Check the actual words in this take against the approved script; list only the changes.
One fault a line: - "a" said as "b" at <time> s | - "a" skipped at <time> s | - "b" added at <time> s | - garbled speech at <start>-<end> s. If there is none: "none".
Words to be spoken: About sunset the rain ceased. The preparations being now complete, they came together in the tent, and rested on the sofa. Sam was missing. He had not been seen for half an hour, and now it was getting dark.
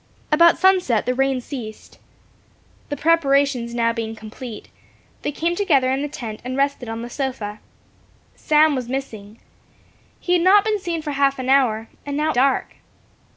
- "was getting" skipped at 12.3 s